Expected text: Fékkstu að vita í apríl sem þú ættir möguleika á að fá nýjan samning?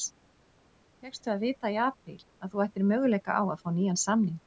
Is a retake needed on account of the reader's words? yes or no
yes